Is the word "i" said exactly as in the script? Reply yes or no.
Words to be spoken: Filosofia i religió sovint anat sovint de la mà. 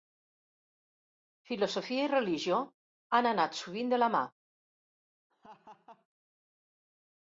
yes